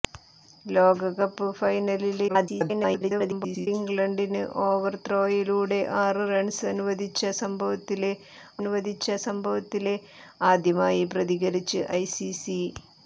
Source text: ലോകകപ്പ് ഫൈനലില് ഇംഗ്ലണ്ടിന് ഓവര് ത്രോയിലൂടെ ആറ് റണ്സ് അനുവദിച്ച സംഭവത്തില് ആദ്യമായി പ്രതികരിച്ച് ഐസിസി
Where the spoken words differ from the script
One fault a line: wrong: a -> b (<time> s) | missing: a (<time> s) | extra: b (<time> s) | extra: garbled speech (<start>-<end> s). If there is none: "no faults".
extra: garbled speech (2.3-3.7 s)
extra: അനുവദിച്ച സംഭവത്തില് (8.6 s)